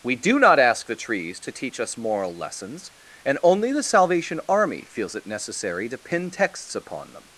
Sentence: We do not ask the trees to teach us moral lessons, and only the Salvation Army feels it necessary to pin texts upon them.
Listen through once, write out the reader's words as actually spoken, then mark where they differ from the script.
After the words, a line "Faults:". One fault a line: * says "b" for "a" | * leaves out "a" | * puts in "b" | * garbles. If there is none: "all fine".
We do not ask the trees to teach us moral lessons, and only the Salvation Army feels it necessary to pin texts upon them.
Faults:
all fine